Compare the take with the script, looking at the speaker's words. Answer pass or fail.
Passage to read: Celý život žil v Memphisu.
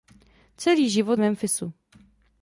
fail